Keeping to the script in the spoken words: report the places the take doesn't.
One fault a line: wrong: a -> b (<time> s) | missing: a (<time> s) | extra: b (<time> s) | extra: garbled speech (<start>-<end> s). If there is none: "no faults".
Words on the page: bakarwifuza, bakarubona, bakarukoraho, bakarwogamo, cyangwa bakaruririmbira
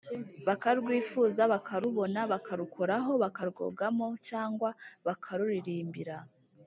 no faults